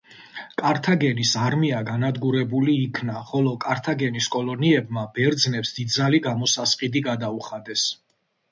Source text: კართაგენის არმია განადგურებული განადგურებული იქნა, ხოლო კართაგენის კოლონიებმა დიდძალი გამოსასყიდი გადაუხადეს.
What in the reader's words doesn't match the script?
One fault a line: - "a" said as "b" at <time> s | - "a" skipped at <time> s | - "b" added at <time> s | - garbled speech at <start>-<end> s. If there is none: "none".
- "განადგურებული" skipped at 2.8 s
- "ბერძნებს" added at 5.2 s